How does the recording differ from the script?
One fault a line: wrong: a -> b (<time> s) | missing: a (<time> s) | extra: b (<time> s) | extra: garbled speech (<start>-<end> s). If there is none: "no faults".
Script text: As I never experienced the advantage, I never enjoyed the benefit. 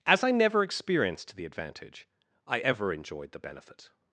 wrong: never -> ever (2.6 s)